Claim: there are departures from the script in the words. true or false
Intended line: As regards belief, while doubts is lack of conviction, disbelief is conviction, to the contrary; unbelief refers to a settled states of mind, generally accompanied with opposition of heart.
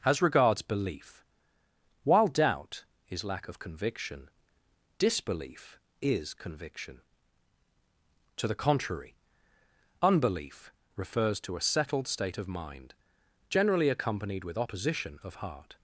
true